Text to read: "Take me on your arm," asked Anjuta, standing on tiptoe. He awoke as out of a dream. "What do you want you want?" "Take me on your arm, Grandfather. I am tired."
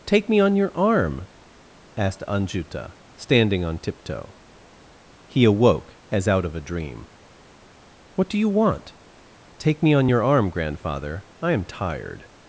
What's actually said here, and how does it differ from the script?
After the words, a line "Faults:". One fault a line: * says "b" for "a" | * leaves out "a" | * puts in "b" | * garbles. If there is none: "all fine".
"Take me on your arm," asked Anjuta, standing on tiptoe. He awoke as out of a dream. "What do you want?" "Take me on your arm, Grandfather. I am tired."
Faults:
* leaves out "you want"